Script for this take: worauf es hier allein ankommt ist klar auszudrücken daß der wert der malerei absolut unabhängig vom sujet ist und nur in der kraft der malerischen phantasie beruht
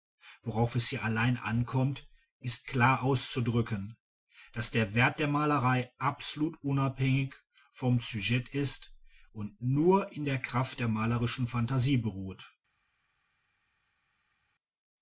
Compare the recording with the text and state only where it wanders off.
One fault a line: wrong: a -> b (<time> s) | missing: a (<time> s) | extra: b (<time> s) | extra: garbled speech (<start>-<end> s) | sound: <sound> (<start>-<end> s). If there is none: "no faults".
no faults